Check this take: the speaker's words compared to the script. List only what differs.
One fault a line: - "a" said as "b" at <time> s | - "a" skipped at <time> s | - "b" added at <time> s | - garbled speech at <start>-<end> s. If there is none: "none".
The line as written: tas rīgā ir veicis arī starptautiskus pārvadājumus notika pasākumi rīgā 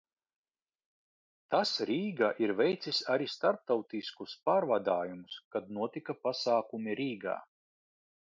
- "kad" added at 5.6 s